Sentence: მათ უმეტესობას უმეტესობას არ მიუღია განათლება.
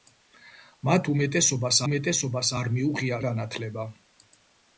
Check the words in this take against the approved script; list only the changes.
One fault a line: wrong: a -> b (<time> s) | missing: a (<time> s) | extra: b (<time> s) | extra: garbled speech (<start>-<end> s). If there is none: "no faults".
no faults